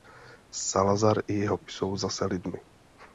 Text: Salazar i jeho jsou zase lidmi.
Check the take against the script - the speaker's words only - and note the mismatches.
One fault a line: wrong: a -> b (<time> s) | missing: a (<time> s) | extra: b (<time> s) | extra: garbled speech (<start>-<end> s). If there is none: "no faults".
no faults